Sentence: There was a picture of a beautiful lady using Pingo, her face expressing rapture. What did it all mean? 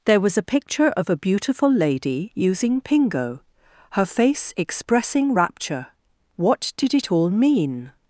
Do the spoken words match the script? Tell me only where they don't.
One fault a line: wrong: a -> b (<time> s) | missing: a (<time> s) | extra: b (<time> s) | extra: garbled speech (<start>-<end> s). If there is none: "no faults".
no faults